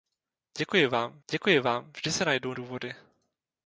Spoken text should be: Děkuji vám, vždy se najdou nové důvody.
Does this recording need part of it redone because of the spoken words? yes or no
yes